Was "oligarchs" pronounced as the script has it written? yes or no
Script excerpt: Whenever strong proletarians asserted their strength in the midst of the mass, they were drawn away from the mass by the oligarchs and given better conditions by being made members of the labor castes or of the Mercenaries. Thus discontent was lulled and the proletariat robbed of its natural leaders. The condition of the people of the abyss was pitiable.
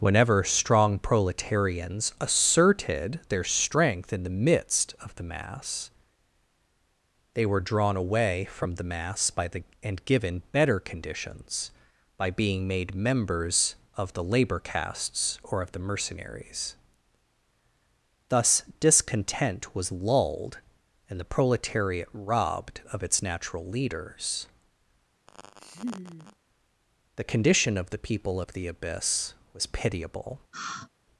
no